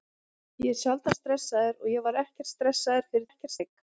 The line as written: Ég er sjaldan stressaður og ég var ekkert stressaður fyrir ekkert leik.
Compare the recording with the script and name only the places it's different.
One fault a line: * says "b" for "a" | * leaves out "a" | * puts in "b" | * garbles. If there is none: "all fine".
all fine